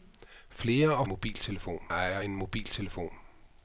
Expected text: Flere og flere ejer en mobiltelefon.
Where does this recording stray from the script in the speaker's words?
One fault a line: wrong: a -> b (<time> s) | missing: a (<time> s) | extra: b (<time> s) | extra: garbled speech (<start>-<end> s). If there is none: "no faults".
wrong: flere -> mobiltelefon (1.0 s)